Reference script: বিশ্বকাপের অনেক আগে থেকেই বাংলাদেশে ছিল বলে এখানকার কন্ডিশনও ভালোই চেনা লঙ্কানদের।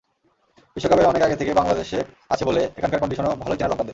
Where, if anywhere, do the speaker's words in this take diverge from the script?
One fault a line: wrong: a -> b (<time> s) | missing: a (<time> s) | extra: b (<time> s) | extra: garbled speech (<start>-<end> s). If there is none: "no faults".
wrong: ছিল -> আছে (2.3 s)